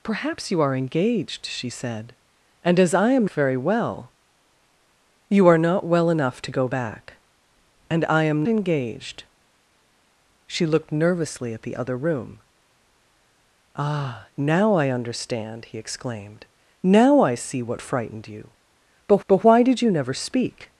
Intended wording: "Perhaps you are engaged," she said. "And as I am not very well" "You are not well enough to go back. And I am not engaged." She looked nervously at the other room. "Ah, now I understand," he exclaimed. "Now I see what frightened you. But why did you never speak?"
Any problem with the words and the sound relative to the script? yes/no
yes